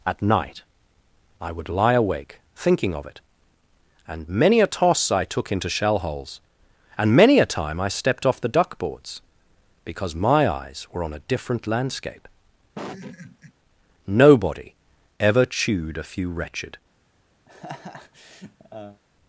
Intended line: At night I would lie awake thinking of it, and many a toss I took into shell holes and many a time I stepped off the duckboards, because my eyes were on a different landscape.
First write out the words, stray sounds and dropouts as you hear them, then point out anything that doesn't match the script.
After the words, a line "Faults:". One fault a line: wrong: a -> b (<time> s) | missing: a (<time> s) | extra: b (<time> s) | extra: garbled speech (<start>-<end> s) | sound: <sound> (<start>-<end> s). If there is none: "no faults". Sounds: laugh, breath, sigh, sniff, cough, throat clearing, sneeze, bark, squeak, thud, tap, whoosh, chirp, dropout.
At night I would lie awake thinking of it, and many a toss I took into shell holes and many a time I stepped off the duckboards, because my eyes were on a different landscape. Nobody ever chewed a few wretched
Faults:
sound: laugh (12.8-13.5 s)
extra: Nobody ever chewed a few wretched (14.1 s)
sound: laugh (17.5-19.0 s)